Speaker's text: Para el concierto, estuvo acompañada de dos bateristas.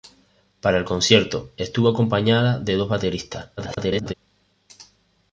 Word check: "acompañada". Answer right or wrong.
right